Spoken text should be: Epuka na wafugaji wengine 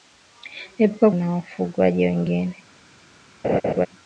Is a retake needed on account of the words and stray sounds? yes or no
yes